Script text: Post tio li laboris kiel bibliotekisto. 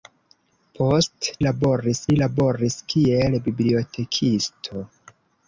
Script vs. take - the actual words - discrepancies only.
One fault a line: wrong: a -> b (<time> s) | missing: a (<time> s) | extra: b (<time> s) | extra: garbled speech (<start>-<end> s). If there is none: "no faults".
wrong: tio -> laboris (1.4 s)